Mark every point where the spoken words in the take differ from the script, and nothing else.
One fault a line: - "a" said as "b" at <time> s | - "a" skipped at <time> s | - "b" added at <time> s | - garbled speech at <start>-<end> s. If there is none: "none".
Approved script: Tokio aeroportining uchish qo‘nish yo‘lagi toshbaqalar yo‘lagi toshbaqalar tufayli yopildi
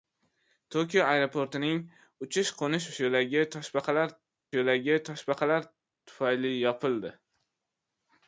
none